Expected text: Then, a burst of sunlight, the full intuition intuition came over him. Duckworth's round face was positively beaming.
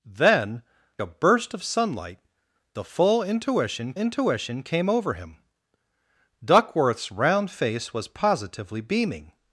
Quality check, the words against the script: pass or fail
pass